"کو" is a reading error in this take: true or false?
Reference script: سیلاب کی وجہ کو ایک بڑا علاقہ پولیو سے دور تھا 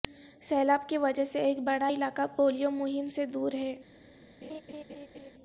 true